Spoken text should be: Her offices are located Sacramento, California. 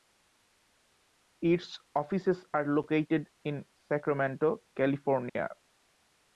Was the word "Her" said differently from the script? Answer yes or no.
yes